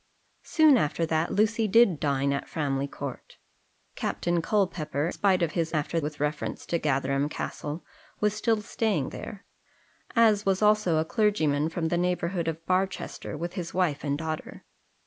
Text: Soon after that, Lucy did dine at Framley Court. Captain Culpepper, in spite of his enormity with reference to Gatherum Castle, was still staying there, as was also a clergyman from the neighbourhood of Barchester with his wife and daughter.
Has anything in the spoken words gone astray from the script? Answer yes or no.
yes